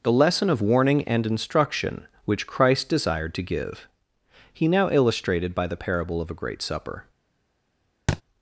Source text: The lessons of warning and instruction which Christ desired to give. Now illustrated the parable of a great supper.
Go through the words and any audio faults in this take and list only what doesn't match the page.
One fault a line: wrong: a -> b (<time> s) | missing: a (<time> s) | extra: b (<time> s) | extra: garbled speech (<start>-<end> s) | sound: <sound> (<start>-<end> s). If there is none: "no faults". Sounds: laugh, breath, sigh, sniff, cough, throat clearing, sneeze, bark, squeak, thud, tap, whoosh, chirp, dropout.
wrong: lessons -> lesson (0.1 s)
extra: He (4.5 s)
extra: by (5.5 s)
sound: thud (8.1-8.2 s)